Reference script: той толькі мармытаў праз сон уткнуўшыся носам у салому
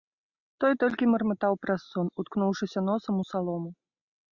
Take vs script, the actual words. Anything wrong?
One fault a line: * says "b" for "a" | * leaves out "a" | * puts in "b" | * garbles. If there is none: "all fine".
all fine